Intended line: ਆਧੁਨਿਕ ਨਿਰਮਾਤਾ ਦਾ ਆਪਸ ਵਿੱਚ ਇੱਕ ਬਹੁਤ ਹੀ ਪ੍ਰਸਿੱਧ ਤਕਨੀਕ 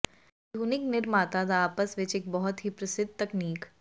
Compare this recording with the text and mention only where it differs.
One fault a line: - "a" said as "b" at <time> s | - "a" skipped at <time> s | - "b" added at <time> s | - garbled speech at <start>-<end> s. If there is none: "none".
none